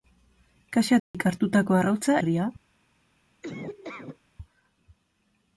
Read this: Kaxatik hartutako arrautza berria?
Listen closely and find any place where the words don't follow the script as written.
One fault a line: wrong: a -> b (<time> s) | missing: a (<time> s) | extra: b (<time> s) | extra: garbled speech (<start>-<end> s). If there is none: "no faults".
no faults